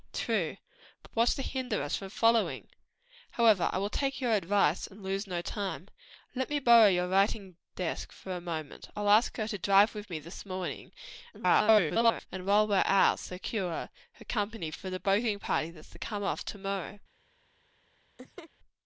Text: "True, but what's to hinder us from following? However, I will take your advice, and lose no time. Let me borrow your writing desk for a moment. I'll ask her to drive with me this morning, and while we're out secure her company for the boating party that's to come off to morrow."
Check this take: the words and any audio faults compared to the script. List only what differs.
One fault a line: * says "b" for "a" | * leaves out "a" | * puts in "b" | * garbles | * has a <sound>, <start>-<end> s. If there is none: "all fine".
* garbles
* has a laugh, 18.2-18.5 s